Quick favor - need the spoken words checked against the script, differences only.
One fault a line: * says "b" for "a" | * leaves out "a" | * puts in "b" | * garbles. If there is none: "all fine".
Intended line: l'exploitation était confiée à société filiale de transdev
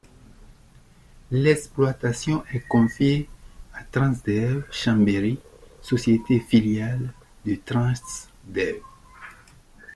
* says "est" for "était"
* puts in "transdev chambéry"